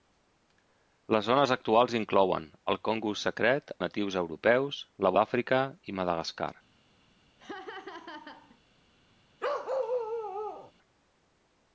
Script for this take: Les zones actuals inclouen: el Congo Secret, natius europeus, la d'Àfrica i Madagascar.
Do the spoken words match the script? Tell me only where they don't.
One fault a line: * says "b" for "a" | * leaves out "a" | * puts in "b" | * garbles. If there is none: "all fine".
all fine